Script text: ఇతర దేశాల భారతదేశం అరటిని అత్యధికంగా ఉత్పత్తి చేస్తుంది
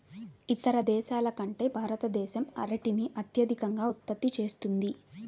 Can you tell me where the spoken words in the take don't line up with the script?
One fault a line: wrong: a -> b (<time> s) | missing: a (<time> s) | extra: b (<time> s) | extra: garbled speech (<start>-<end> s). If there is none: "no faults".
extra: కంటే (1.4 s)